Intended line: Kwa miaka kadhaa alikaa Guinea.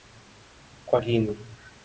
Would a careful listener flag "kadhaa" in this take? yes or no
yes